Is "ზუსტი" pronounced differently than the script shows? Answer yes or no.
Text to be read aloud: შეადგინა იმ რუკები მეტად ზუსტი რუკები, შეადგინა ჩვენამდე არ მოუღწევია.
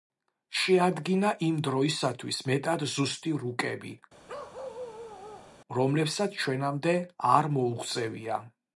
no